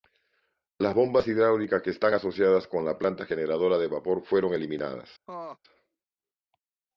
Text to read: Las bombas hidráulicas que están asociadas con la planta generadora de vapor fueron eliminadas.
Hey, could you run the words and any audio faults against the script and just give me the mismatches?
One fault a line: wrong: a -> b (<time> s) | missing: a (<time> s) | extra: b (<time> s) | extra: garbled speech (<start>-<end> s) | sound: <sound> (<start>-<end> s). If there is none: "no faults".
sound: laugh (5.3-5.6 s)